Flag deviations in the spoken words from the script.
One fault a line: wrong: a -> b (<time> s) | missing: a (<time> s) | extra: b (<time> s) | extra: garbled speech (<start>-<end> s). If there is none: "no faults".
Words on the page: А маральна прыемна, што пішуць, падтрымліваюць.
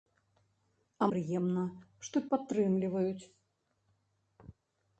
missing: маральна (1.1 s)
missing: пішуць (2.2 s)